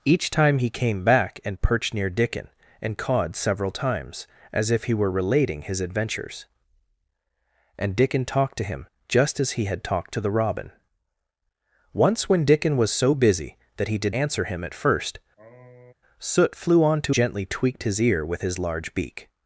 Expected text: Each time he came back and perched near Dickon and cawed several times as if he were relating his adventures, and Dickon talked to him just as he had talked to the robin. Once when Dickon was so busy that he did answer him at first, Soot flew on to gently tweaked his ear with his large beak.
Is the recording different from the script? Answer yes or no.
no